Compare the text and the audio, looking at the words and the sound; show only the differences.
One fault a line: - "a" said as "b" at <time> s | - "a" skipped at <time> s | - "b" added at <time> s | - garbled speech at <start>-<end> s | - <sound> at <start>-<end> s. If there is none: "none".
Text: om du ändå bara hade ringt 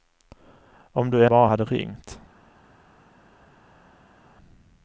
- "ändå" skipped at 1.2 s